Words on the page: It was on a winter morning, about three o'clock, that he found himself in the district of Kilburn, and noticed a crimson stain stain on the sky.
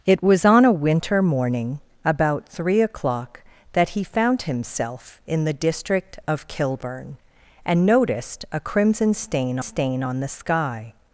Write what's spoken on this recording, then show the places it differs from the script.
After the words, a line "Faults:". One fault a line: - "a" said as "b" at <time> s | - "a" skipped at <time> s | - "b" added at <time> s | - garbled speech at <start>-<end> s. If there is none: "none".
It was on a winter morning, about three o'clock, that he found himself in the district of Kilburn, and noticed a crimson stain stain on the sky.
Faults:
none